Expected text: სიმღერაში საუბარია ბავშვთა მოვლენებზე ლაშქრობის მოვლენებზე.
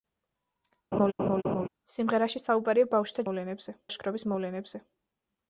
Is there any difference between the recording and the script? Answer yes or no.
no